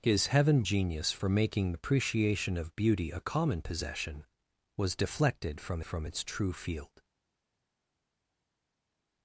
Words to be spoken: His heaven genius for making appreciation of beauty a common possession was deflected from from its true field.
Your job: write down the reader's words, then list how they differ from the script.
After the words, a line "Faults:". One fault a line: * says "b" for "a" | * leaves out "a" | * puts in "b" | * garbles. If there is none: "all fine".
His heaven genius for making appreciation of beauty a common possession was deflected from from its true field.
Faults:
all fine